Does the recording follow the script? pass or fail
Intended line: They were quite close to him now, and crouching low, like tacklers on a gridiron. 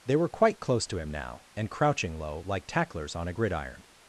pass